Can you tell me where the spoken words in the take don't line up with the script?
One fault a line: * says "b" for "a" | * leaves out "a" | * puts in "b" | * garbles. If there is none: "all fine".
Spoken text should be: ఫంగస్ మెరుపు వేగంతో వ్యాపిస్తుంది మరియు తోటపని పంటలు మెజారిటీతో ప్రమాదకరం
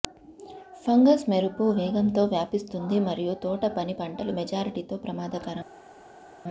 all fine